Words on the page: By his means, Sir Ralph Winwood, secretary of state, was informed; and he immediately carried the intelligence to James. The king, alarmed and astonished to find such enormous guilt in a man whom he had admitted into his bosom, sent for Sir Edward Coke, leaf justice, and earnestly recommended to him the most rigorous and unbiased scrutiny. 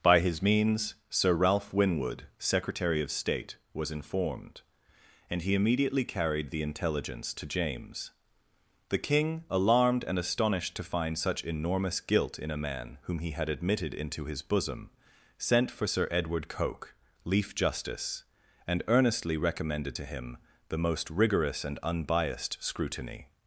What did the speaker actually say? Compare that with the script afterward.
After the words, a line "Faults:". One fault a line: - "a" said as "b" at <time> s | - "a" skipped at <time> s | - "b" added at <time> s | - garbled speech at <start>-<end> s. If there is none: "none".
By his means, Sir Ralph Winwood, secretary of state, was informed; and he immediately carried the intelligence to James. The king, alarmed and astonished to find such enormous guilt in a man whom he had admitted into his bosom, sent for Sir Edward Coke, leaf justice, and earnestly recommended to him the most rigorous and unbiased scrutiny.
Faults:
none